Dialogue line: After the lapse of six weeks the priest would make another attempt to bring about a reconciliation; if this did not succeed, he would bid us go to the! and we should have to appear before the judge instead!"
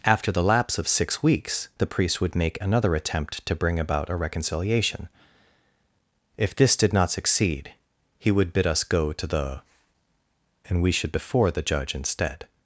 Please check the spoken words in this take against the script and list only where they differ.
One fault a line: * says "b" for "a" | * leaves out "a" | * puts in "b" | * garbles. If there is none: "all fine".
* leaves out "have to appear"